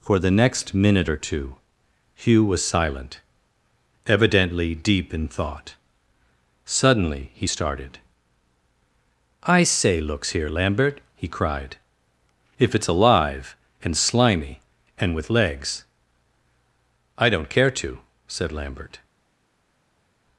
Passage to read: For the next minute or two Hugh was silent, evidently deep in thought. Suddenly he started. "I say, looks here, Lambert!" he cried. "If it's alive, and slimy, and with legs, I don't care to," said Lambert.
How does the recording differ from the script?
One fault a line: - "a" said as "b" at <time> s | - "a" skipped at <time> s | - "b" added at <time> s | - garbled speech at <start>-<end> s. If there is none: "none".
none